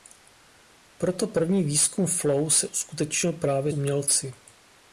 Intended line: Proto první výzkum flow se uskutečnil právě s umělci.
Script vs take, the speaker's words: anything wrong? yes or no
yes